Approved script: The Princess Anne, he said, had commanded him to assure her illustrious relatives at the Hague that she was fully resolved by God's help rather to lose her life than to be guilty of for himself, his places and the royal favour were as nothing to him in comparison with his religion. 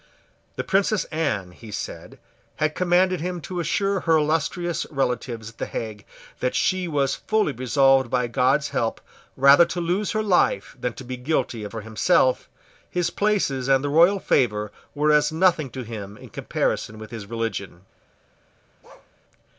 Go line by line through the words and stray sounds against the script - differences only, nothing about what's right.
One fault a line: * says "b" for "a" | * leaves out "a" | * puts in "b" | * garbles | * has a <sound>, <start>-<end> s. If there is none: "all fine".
* has a bark, 18.8-19.1 s